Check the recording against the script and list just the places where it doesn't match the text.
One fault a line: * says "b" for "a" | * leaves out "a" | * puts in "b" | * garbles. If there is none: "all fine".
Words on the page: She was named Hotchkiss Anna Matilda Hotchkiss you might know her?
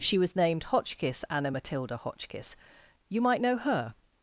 all fine